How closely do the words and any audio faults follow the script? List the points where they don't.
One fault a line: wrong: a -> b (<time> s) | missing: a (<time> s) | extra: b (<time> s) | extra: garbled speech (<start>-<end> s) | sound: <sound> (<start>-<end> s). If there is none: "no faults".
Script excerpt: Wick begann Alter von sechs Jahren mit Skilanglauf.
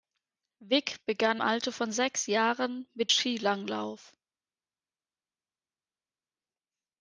no faults